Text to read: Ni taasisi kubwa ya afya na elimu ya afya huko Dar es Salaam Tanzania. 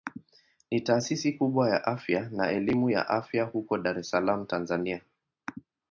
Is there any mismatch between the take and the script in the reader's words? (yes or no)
no